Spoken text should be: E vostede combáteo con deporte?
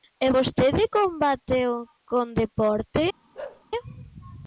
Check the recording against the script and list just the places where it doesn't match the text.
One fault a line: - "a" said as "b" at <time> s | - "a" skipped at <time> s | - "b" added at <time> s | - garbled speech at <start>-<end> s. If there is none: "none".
none